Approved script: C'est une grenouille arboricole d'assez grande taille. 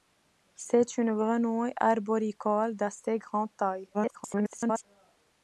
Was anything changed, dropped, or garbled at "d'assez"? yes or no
no